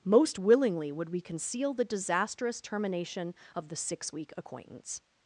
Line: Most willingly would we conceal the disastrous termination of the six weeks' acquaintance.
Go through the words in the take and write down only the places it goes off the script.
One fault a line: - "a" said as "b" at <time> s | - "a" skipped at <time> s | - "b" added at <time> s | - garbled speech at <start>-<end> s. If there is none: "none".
- "weeks" said as "week" at 4.1 s